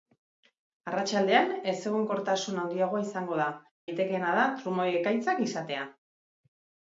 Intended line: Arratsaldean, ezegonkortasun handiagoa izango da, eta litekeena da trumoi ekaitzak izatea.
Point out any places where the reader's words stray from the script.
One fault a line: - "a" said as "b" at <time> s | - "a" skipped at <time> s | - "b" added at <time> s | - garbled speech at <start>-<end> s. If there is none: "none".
- "eta" skipped at 3.5 s